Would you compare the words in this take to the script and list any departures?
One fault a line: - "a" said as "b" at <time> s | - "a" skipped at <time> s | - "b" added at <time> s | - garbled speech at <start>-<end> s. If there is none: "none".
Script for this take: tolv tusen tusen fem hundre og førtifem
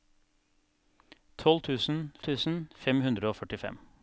none